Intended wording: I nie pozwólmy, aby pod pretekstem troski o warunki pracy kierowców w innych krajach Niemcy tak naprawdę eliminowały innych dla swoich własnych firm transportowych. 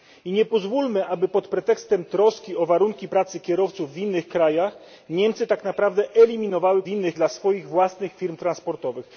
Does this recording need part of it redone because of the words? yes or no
no